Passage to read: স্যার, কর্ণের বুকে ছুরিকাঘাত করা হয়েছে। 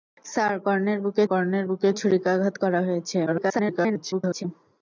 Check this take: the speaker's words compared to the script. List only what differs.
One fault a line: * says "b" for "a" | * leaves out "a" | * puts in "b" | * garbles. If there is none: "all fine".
* puts in "কর্ণের বুকে"
* garbles